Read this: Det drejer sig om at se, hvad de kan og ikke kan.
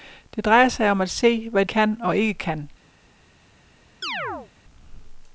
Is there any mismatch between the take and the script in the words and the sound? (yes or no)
yes